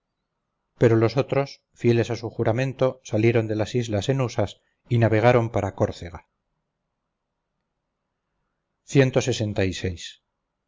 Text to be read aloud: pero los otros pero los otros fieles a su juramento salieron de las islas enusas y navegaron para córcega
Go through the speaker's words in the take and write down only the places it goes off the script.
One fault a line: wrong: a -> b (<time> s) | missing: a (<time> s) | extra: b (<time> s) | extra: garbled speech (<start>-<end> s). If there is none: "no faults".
missing: pero los otros (1.6 s)